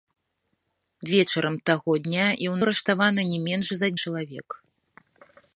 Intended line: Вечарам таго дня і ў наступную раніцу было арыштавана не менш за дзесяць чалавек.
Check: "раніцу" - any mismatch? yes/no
yes